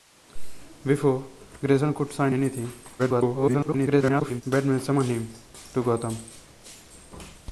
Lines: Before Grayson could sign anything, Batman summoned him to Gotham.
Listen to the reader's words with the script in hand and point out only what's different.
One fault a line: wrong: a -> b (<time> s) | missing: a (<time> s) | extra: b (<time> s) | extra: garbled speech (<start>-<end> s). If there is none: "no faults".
extra: garbled speech (3.0-4.4 s)